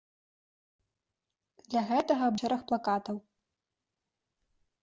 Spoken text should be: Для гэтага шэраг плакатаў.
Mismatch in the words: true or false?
false